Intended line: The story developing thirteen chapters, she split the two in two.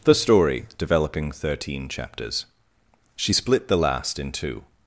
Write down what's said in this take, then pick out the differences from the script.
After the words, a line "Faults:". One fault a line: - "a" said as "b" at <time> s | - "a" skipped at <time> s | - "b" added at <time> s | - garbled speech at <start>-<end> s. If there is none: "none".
The story developing thirteen chapters, she split the last in two.
Faults:
- "two" said as "last" at 3.8 s